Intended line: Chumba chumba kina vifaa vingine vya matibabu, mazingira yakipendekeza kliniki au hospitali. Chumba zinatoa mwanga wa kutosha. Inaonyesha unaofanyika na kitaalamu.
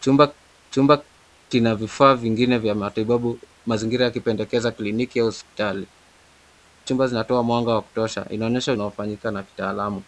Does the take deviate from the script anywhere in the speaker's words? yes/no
no